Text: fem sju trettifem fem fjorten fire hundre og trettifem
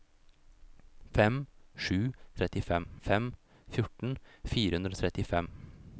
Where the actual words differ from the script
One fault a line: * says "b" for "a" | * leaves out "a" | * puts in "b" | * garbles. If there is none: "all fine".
all fine